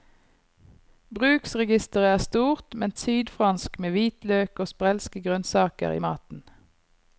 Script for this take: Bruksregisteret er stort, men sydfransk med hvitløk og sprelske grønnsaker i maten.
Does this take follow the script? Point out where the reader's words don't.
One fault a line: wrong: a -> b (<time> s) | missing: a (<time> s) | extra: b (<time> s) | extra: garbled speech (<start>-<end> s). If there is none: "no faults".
no faults